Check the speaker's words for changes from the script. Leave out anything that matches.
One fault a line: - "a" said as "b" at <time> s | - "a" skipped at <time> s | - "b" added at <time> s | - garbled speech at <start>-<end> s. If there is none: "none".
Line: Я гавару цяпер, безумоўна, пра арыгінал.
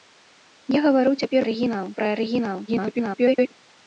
- "безумоўна" said as "арыгінал" at 1.5 s
- garbled speech at 2.7-3.5 s